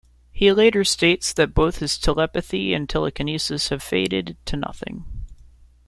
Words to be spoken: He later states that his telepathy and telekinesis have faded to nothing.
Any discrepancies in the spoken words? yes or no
yes